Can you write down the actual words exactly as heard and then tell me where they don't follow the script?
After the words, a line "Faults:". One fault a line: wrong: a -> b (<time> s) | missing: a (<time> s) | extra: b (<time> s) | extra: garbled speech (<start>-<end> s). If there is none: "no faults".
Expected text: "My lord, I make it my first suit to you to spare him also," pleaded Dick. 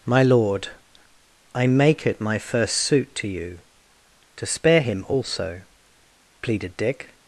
"My lord, I make it my first suit to you to spare him also," pleaded Dick.
Faults:
no faults